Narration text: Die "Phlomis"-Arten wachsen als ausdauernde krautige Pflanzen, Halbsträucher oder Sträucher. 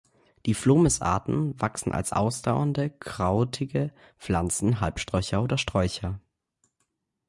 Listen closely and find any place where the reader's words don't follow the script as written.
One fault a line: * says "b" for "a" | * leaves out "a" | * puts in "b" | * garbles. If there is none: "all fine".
all fine